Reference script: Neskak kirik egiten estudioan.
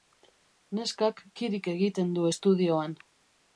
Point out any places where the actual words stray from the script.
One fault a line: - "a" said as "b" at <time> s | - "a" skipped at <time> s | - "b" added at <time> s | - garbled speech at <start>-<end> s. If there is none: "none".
- "du" added at 2.2 s